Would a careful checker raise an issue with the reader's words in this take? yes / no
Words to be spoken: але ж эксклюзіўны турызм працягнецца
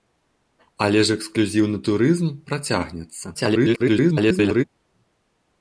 yes